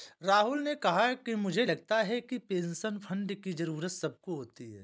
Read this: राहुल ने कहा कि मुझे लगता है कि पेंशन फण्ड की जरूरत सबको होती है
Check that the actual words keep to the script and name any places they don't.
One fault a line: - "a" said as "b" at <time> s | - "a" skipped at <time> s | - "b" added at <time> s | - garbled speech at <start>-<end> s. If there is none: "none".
none